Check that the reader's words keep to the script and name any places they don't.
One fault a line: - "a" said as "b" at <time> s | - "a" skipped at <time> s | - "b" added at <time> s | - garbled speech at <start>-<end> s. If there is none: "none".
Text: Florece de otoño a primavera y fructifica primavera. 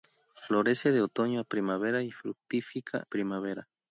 none